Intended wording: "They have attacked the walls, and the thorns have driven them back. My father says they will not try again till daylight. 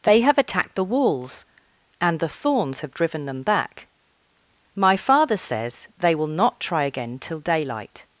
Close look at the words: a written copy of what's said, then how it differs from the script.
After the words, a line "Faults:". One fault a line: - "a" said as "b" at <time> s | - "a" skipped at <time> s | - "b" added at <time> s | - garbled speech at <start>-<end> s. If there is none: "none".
"They have attacked the walls, and the thorns have driven them back. My father says they will not try again till daylight.
Faults:
none